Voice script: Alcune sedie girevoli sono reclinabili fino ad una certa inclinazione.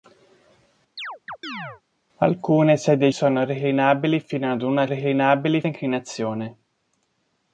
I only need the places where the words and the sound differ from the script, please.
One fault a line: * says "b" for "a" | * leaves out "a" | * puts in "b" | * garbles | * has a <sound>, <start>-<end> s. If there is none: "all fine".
* has a chirp, 1.0-1.8 s
* leaves out "girevoli"
* says "reclinabili" for "certa"